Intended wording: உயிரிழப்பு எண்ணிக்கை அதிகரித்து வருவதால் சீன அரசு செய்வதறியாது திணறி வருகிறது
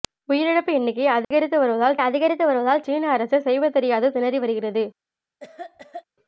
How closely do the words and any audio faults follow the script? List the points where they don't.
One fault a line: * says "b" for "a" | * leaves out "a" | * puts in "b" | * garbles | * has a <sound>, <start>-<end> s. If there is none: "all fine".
* has a dropout, 1.2-1.3 s
* puts in "அதிகரித்து வருவதால்"
* has a cough, 5.4-6.0 s